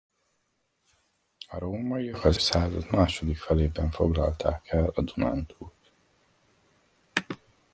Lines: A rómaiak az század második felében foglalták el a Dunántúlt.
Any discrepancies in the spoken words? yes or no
no